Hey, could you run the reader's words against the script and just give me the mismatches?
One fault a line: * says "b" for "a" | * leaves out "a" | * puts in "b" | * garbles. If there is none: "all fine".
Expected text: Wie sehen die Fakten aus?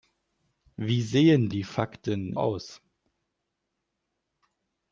all fine